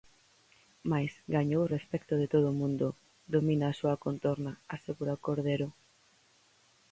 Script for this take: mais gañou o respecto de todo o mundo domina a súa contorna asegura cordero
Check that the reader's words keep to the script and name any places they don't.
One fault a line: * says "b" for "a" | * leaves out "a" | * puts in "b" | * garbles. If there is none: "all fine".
all fine